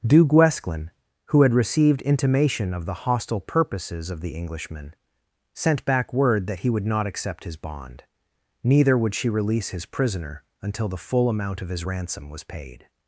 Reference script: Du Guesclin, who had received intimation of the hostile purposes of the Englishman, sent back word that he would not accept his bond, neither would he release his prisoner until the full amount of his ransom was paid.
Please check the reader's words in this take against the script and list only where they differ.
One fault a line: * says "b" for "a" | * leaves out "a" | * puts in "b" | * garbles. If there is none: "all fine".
* says "she" for "he"